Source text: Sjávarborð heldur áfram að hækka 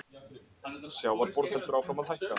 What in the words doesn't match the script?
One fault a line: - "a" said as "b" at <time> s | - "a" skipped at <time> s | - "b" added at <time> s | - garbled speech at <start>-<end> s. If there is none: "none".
none